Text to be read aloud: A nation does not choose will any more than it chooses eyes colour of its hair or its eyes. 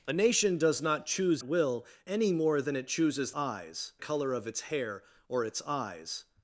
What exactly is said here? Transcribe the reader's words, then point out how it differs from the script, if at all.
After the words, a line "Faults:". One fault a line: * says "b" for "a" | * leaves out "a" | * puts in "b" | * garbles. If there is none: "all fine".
A nation does not choose will any more than it chooses eyes colour of its hair or its eyes.
Faults:
all fine